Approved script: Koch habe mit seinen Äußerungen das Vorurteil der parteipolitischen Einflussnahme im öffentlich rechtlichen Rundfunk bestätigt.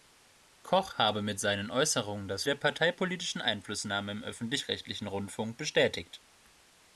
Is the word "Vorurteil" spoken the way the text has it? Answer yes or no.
no